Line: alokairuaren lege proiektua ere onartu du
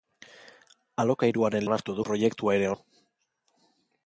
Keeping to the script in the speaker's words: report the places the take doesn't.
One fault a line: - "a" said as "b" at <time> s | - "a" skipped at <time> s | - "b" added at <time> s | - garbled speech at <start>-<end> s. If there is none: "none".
- "lege" said as "onartu" at 1.7 s
- "onartu" skipped at 2.7 s